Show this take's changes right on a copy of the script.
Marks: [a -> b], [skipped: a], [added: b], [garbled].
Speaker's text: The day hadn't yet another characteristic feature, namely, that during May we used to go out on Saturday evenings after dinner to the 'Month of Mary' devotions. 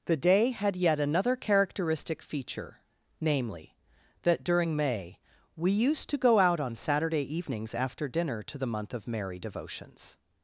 The day [hadn't -> had] yet another characteristic feature, namely, that during May we used to go out on Saturday evenings after dinner to the 'Month of Mary' devotions.